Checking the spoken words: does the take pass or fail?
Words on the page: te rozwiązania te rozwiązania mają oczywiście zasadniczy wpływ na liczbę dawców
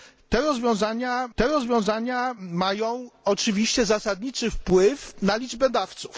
pass